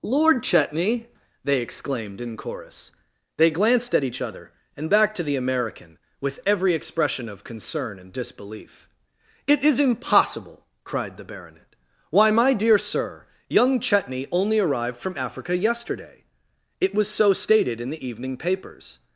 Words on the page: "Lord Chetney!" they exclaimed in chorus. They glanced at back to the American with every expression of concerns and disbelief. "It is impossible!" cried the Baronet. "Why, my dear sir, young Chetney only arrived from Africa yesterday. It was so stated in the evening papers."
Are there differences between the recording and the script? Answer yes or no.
yes